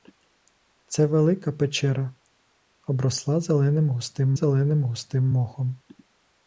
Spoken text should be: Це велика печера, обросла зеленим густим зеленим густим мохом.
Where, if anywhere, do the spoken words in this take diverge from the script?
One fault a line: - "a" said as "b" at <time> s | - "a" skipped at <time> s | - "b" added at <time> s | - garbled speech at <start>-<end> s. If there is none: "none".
none